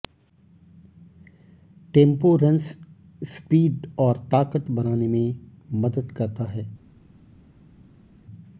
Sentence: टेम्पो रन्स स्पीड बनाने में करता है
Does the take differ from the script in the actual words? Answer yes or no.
yes